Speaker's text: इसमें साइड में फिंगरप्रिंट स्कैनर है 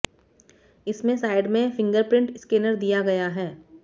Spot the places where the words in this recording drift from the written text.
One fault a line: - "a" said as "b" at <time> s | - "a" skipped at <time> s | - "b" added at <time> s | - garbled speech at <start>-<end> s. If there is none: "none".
- "दिया गया" added at 2.8 s